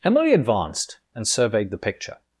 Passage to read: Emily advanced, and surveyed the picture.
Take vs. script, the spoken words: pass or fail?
pass